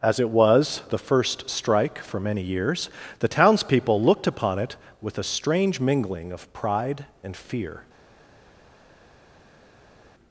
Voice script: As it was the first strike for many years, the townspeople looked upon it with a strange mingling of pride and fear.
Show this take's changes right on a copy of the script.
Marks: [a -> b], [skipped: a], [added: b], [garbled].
As it was the first strike for many years, the townspeople looked upon it with a strange mingling of pride and fear.